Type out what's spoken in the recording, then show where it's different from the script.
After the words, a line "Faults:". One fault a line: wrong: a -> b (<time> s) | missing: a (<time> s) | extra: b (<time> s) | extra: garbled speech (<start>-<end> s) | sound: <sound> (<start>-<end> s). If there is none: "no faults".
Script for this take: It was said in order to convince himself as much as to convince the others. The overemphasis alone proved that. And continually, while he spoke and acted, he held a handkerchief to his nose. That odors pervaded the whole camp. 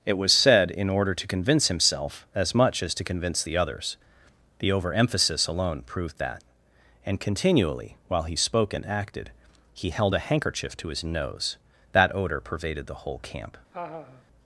It was said in order to convince himself as much as to convince the others. The overemphasis alone proved that. And continually, while he spoke and acted, he held a handkerchief to his nose. That odor pervaded the whole camp.
Faults:
wrong: odors -> odor (12.1 s)
sound: laugh (13.7-14.2 s)